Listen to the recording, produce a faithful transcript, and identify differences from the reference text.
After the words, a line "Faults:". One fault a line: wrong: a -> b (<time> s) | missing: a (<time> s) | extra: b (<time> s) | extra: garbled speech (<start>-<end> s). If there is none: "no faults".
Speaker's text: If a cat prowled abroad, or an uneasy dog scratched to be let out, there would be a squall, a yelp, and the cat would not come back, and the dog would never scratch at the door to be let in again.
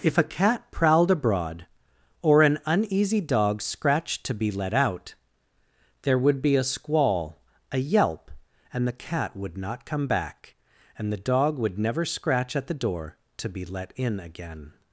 If a cat prowled abroad, or an uneasy dog scratched to be let out, there would be a squall, a yelp, and the cat would not come back, and the dog would never scratch at the door to be let in again.
Faults:
no faults